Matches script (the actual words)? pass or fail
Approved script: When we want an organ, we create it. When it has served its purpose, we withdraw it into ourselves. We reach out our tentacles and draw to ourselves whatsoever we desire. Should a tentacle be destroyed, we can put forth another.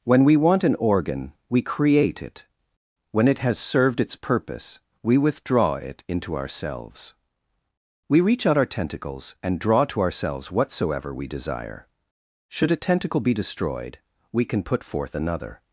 pass